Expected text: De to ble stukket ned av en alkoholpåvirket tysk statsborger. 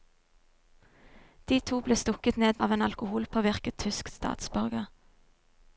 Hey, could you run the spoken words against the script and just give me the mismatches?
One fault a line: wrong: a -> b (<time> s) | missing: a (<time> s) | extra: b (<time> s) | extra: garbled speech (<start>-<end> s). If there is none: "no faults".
no faults